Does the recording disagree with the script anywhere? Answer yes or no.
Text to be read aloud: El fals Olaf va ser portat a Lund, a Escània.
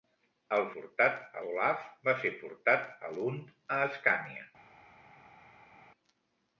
yes